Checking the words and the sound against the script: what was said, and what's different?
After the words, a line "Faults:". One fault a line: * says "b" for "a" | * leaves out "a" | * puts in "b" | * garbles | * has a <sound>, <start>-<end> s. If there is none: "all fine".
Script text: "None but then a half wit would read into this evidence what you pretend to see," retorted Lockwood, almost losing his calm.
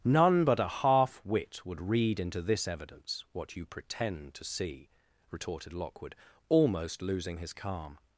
"None but a half wit would read into this evidence what you pretend to see," retorted Lockwood, almost losing his calm.
Faults:
* leaves out "then"